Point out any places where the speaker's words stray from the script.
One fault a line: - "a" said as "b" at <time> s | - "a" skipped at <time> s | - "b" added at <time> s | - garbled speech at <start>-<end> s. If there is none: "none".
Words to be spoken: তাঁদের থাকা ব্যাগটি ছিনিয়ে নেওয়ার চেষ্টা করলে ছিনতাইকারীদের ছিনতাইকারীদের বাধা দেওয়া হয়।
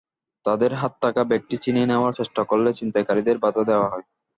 - "হাতে" added at 0.7 s
- "ছিনতাইকারীদের" skipped at 3.4 s